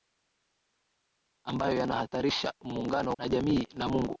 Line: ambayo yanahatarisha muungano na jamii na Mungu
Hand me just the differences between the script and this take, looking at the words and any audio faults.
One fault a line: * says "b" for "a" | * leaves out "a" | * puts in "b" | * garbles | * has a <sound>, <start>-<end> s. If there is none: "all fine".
all fine